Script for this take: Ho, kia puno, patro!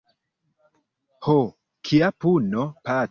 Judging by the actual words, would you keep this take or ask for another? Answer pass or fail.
pass